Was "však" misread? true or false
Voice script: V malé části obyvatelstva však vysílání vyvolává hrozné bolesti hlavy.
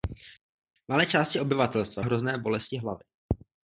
true